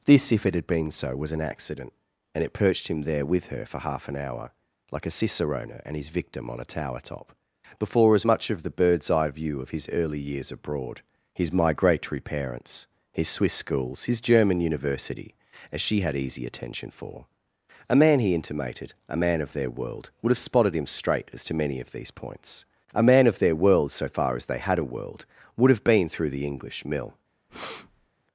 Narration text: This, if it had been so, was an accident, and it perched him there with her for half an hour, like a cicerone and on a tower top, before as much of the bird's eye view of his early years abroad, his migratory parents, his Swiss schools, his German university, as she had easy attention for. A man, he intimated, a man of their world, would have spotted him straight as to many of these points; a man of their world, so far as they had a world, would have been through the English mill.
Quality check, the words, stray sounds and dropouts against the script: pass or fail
fail